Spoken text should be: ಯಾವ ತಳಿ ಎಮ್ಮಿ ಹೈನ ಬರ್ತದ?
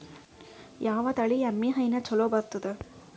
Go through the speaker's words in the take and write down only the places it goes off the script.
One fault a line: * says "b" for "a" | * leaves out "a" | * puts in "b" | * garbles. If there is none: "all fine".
* puts in "ಚಲೋ"